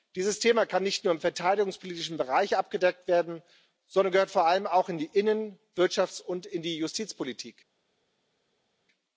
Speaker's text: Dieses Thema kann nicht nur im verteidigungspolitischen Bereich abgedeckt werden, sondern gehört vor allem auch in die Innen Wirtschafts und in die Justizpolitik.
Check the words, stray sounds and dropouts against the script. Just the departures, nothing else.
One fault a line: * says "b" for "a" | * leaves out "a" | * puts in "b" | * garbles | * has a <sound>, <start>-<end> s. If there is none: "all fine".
all fine